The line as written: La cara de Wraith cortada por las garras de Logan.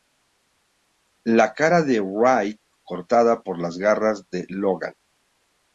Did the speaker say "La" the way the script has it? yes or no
yes